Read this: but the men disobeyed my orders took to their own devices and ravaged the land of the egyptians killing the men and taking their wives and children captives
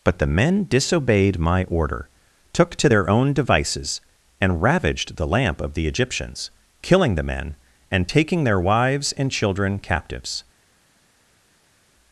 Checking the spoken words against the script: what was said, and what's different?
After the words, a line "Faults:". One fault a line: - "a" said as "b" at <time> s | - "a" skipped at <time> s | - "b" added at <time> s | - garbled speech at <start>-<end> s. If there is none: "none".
but the men disobeyed my order took to their own devices and ravaged the lamp of the egyptians killing the men and taking their wives and children captives
Faults:
- "orders" said as "order" at 1.6 s
- "land" said as "lamp" at 5.3 s